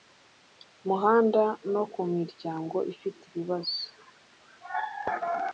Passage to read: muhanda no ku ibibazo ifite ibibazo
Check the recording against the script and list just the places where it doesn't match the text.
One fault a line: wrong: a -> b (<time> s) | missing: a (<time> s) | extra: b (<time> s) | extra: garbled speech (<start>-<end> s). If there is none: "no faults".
wrong: ibibazo -> miryango (2.1 s)